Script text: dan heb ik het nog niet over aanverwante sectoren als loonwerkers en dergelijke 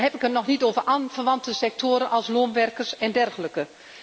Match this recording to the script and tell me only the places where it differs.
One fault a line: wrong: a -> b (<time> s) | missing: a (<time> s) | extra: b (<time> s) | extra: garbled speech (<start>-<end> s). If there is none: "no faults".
no faults